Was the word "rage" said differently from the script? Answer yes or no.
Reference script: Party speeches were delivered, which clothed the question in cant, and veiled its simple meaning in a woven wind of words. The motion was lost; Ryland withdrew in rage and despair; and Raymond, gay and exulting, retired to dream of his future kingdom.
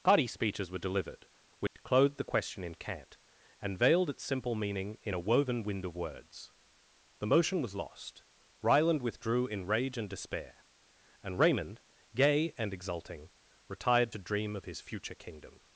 no